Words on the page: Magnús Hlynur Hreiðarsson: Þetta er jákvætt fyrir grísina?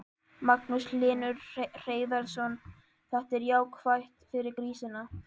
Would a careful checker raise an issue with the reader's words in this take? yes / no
no